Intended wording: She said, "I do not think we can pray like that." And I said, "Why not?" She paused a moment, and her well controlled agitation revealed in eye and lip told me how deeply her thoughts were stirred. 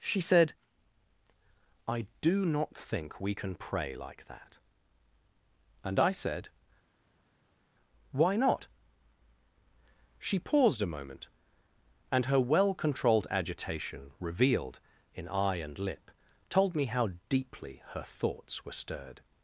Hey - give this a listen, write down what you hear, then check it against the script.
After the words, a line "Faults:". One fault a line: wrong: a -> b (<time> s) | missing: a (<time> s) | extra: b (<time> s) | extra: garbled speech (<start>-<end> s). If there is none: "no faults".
She said, "I do not think we can pray like that." And I said, "Why not?" She paused a moment, and her well controlled agitation revealed in eye and lip told me how deeply her thoughts were stirred.
Faults:
no faults